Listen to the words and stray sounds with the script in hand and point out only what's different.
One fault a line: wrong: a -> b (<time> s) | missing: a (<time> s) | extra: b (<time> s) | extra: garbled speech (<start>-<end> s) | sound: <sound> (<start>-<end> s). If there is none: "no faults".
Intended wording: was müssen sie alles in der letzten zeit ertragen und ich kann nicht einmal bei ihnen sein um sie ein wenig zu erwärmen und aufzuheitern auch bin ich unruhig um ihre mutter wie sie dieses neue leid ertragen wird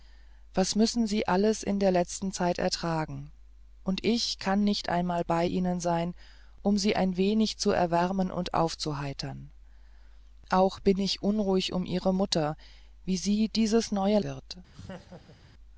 missing: leid ertragen (14.2 s)
sound: laugh (14.7-15.4 s)